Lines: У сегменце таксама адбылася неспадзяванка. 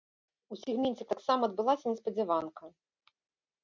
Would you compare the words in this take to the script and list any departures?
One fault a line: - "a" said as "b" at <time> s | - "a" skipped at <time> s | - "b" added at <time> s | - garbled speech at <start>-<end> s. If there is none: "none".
none